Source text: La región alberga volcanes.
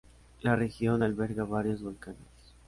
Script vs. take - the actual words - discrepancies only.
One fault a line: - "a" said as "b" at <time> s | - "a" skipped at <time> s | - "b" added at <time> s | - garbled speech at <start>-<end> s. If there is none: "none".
- "varios" added at 1.5 s